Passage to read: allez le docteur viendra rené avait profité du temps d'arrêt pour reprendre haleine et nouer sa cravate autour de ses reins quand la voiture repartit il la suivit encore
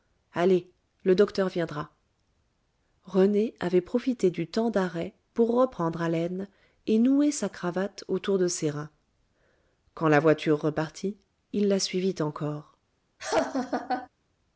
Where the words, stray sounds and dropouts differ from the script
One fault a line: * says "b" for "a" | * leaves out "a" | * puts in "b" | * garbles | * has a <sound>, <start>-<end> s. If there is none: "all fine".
* has a laugh, 13.2-14.1 s